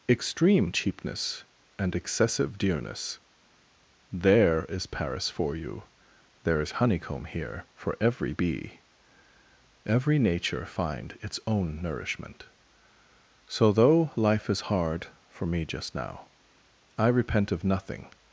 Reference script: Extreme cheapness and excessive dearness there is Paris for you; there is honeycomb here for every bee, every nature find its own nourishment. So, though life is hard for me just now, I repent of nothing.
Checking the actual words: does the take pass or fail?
pass